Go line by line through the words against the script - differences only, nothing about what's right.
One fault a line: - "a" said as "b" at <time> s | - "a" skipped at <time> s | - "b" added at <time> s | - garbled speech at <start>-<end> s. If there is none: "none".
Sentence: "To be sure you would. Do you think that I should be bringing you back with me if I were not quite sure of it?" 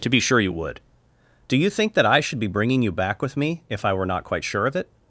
none